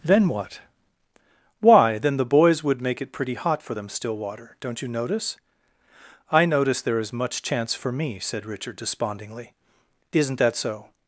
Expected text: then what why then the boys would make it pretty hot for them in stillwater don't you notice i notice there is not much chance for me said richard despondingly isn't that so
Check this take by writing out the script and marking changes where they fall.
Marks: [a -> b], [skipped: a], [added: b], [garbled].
then what why then the boys would make it pretty hot for them [skipped: in] stillwater don't you notice i notice there is [skipped: not] much chance for me said richard despondingly isn't that so